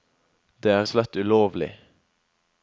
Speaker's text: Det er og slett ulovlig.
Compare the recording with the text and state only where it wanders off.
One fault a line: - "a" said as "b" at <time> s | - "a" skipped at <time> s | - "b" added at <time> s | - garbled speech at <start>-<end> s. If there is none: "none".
none